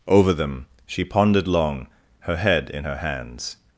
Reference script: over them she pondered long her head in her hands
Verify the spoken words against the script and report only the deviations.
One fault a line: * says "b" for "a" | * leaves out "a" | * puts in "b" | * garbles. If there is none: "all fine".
all fine